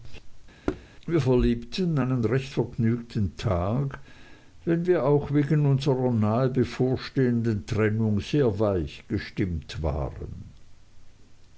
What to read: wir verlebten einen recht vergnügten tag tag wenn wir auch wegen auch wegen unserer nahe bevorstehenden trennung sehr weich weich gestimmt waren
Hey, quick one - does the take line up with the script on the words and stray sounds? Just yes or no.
no